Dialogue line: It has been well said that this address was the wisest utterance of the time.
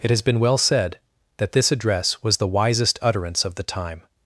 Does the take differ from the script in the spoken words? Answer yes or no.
no